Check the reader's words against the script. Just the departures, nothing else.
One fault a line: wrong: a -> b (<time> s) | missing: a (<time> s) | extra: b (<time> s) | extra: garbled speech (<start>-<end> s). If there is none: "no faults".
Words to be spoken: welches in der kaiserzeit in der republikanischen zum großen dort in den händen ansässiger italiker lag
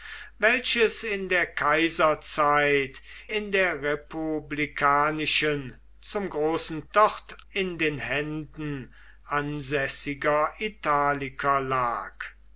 no faults